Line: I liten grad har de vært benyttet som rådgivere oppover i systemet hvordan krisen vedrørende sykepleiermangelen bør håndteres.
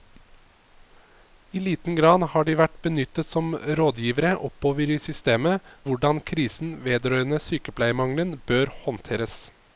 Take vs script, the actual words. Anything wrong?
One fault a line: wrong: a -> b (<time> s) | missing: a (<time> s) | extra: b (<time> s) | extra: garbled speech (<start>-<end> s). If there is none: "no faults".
no faults